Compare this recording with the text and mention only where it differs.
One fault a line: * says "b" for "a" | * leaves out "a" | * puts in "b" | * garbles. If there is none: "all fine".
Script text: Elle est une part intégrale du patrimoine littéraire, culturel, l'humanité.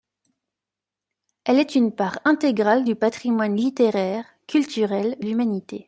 all fine